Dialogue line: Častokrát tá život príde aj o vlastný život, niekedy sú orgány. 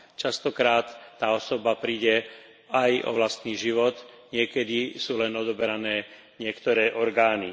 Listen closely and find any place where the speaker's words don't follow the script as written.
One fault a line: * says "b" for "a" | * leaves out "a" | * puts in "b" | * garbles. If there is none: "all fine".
* says "osoba" for "život"
* puts in "len odoberané niektoré"